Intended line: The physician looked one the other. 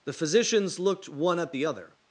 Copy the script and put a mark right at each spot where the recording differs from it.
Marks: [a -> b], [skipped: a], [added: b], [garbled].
The [physician -> physicians] looked one [added: at] the other.